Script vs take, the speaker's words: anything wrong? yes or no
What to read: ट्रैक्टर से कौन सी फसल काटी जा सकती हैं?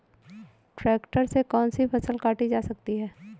no